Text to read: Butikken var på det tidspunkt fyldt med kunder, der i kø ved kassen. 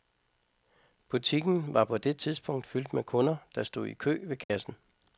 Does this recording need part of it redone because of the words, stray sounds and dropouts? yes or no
yes